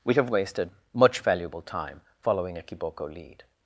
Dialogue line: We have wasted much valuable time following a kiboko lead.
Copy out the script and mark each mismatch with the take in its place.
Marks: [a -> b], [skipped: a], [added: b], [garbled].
We have wasted much valuable time following a kiboko lead.